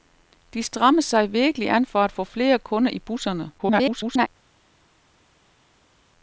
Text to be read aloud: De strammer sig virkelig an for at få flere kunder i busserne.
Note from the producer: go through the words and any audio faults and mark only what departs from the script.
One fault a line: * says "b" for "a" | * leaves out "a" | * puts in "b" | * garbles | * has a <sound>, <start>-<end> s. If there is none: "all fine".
* garbles